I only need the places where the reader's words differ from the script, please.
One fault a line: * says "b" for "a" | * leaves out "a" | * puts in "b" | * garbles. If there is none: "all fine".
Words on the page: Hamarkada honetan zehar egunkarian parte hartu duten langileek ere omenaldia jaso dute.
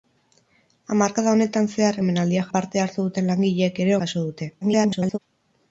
* says "omenaldia" for "egunkarian"
* leaves out "omenaldia"
* garbles